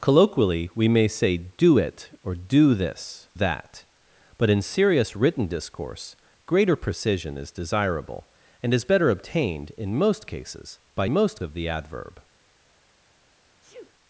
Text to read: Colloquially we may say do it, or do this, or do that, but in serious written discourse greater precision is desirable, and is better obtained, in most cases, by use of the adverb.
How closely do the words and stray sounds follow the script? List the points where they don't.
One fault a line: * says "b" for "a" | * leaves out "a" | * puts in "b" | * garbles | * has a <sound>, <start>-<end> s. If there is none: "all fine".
* leaves out "or do"
* says "most" for "use"
* has a sneeze, 13.6-13.9 s